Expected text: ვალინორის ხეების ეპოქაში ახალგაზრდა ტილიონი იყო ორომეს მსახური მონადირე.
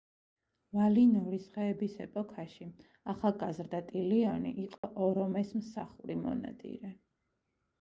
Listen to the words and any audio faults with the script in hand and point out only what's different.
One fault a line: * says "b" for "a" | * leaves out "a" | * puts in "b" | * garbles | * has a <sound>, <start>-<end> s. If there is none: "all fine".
* has a dropout, 4.8-4.8 s